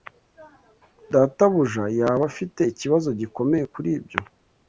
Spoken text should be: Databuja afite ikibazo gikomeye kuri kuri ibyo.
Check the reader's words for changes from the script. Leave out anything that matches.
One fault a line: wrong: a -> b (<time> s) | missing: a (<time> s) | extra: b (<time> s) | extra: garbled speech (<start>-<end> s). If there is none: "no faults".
extra: yaba (2.0 s)
missing: kuri (3.9 s)